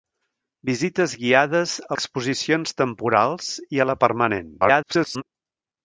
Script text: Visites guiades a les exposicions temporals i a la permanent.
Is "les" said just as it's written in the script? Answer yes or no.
no